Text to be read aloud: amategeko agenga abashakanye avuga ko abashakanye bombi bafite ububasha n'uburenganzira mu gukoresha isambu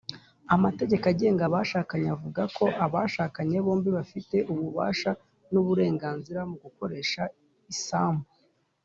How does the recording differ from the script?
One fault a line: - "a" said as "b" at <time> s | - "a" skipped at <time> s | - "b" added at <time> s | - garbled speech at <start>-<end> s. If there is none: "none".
none